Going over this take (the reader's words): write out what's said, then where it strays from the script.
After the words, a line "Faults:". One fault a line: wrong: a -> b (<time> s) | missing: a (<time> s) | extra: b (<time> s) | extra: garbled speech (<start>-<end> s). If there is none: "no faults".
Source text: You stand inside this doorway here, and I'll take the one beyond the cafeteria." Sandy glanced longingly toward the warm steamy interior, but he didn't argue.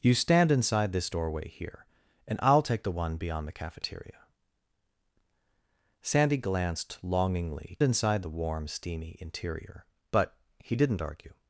You stand inside this doorway here, and I'll take the one beyond the cafeteria." Sandy glanced longingly inside the warm steamy interior, but he didn't argue.
Faults:
wrong: toward -> inside (7.8 s)